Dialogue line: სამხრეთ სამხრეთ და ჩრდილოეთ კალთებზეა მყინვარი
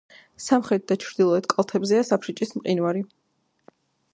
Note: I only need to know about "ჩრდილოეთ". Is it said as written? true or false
true